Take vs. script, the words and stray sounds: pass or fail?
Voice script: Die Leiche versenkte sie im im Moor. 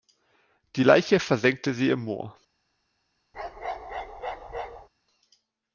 fail